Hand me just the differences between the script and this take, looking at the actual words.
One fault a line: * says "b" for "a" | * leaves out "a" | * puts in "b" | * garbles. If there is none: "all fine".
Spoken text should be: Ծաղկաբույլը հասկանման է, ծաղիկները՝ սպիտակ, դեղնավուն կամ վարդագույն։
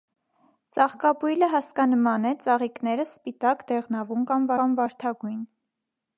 * puts in "կամ"